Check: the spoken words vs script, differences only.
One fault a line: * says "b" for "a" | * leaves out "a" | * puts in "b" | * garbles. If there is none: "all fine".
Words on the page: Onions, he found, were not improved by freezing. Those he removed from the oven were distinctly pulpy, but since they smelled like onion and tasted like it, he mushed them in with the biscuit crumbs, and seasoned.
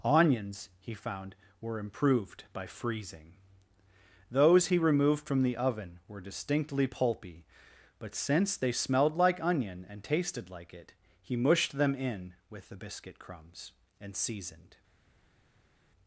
* leaves out "not"